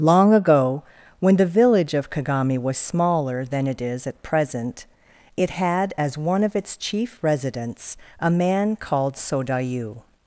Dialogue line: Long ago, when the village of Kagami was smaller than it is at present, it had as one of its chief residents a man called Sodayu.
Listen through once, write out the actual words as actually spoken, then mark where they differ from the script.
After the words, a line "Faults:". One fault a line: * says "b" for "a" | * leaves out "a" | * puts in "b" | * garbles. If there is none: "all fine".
Long ago, when the village of Kagami was smaller than it is at present, it had as one of its chief residents a man called Sodayu.
Faults:
all fine